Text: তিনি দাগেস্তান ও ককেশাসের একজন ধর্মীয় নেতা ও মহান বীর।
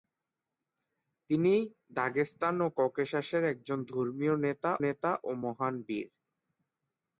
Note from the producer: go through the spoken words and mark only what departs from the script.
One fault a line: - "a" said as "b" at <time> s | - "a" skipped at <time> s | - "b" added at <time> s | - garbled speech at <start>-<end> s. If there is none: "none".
- "নেতা" added at 4.8 s